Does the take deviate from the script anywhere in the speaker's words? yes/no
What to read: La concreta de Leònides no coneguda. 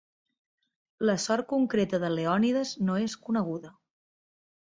yes